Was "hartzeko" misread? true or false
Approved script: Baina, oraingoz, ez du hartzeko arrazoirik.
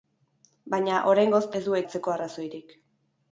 false